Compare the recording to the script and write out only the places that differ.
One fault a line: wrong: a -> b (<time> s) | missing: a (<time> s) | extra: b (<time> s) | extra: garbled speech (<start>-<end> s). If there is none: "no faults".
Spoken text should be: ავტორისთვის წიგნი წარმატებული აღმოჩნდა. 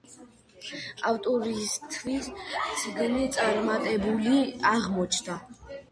no faults